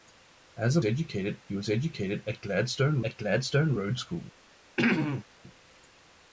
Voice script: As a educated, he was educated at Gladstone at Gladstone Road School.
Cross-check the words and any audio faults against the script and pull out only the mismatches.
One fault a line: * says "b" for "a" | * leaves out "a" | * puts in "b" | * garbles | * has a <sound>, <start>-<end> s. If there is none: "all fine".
* has a throat clearing, 4.8-5.2 s